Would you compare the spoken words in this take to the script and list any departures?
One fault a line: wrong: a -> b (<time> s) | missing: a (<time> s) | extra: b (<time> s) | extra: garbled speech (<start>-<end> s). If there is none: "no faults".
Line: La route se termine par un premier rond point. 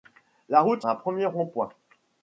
missing: termine par (0.9 s)